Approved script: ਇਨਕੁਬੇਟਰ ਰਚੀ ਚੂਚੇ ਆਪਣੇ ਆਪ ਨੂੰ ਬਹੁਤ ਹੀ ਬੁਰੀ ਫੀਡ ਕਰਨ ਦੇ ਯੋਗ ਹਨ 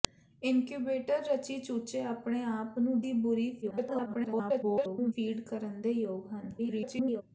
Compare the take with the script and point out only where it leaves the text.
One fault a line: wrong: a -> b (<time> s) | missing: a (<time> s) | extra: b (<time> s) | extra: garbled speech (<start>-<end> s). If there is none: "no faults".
missing: ਬਹੁਤ (3.0 s)
extra: garbled speech (3.6-5.1 s)
extra: garbled speech (6.6-7.2 s)